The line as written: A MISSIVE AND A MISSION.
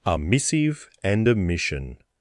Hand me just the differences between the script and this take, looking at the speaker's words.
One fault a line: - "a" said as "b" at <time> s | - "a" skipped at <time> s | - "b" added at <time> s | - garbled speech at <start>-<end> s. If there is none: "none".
none